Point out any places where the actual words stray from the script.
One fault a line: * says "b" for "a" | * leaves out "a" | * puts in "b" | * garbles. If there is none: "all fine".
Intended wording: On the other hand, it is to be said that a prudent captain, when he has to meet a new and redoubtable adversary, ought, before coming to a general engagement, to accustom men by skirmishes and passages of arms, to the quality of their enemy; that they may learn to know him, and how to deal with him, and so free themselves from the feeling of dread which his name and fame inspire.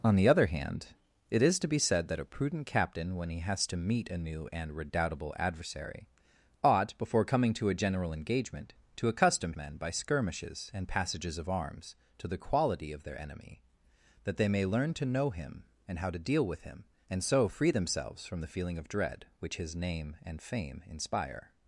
all fine